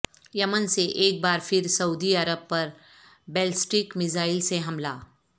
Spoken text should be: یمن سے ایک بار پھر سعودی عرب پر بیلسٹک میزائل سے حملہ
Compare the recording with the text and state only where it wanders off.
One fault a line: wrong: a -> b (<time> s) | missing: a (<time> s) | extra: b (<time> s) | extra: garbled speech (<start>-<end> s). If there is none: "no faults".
no faults